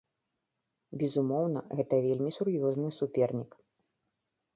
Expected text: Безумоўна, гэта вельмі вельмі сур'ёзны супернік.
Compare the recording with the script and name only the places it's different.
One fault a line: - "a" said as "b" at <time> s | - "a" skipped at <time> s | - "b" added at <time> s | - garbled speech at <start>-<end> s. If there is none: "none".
- "вельмі" skipped at 2.3 s